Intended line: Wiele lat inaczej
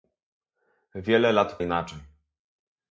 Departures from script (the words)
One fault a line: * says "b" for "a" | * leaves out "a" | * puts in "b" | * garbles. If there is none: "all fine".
all fine